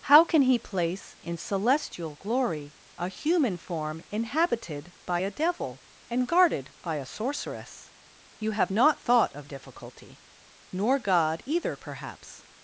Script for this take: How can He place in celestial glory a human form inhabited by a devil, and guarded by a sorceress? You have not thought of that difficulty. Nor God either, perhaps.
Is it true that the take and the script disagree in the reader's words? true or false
true